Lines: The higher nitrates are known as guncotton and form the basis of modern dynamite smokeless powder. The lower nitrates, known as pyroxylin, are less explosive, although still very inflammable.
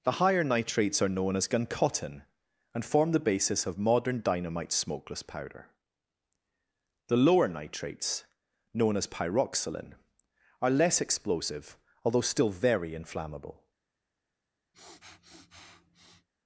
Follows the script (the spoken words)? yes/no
yes